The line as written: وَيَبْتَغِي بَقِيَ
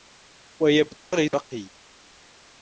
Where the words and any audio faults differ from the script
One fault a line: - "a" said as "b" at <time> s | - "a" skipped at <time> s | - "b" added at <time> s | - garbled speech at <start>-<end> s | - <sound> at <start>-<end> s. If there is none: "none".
- dropout at 1.0-1.1 s